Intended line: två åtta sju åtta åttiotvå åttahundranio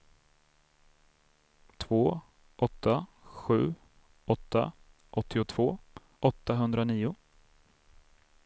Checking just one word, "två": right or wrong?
right